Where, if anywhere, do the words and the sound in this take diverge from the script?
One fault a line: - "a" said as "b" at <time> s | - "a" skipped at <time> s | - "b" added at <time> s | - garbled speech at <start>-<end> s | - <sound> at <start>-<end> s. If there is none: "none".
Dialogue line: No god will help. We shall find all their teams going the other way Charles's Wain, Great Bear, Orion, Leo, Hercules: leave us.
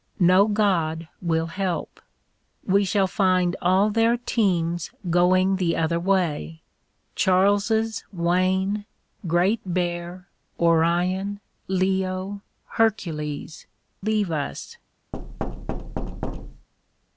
- thud at 15.1-16.7 s